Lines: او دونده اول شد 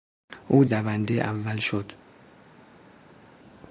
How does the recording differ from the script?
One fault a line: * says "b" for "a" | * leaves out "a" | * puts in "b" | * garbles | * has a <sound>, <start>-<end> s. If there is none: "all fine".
all fine